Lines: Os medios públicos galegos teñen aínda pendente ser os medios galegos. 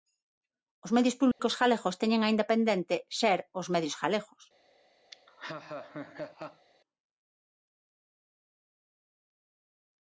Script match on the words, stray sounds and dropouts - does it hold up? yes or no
no